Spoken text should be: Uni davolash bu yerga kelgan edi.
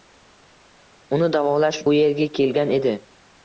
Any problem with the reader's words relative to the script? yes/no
no